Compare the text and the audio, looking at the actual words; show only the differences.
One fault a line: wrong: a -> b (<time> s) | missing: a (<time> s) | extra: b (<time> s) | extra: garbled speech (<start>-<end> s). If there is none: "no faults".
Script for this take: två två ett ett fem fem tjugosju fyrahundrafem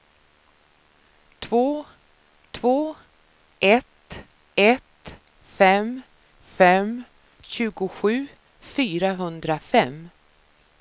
no faults